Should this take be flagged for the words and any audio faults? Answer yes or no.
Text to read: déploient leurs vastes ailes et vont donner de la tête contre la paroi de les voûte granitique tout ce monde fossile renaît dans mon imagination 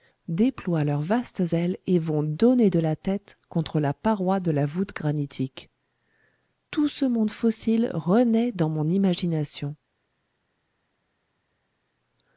yes